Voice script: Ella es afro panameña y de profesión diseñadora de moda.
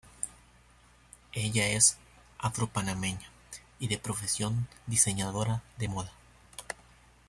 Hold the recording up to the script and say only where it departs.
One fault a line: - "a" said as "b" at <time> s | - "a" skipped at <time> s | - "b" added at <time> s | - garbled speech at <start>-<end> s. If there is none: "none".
none